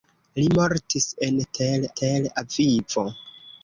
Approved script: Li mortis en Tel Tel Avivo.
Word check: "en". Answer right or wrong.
right